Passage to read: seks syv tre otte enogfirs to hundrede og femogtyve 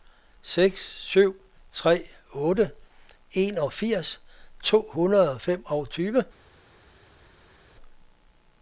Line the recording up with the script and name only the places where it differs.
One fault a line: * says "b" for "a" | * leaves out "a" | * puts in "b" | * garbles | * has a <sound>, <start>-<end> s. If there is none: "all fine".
all fine